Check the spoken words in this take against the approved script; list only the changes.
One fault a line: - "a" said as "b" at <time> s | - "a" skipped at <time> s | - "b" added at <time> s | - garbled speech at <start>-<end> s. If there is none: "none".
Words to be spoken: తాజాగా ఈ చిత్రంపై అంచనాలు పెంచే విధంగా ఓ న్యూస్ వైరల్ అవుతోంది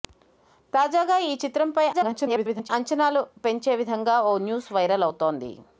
- garbled speech at 1.9-2.7 s